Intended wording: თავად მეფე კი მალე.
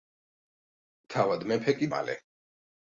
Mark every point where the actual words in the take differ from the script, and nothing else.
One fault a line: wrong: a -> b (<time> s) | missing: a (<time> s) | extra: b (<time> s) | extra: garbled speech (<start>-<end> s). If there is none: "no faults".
no faults